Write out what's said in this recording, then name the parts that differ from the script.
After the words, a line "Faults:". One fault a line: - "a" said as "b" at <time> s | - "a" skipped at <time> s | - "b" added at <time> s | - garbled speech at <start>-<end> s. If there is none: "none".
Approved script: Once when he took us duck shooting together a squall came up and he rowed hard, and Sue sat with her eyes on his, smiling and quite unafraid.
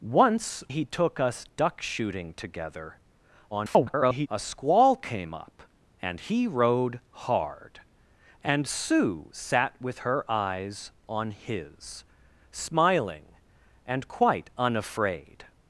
Once he took us duck shooting together [garbled] a squall came up and he rowed hard, and Sue sat with her eyes on his, smiling and quite unafraid.
Faults:
- "when" skipped at 0.6 s
- garbled speech at 3.5-4.3 s